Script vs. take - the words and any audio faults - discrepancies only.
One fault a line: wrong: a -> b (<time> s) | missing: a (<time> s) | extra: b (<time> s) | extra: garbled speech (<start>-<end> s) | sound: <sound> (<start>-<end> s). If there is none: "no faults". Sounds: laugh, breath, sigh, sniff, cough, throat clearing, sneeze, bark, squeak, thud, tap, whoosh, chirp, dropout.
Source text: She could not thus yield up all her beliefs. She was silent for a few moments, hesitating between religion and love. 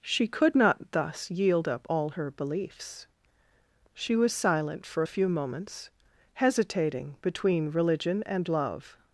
no faults